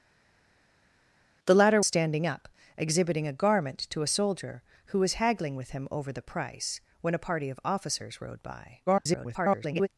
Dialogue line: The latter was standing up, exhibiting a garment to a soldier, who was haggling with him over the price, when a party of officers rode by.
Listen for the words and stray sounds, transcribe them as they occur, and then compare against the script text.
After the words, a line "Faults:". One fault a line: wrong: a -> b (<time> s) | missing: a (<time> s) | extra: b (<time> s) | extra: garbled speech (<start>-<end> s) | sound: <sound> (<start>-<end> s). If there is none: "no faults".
The latter standing up, exhibiting a garment to a soldier, who was haggling with him over the price, when a party of officers rode by. [garbled]
Faults:
missing: was (1.8 s)
extra: garbled speech (8.9-9.9 s)